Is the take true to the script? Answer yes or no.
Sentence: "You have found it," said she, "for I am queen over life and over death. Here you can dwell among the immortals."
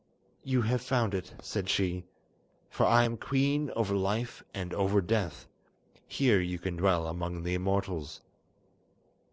yes